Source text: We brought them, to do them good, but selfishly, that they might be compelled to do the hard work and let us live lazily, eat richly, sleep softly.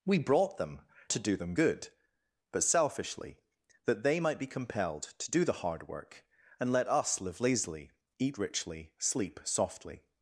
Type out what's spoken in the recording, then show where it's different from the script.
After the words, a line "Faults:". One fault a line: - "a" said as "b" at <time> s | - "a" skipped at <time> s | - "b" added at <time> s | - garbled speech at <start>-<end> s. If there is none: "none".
We brought them, to do them good, but selfishly, that they might be compelled to do the hard work and let us live lazily, eat richly, sleep softly.
Faults:
none